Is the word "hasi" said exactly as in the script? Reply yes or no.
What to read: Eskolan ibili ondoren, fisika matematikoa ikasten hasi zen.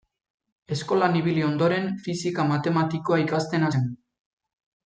no